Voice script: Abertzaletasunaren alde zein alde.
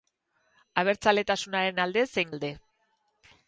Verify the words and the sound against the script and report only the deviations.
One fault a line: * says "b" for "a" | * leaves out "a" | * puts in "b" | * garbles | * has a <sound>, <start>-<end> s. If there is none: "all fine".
all fine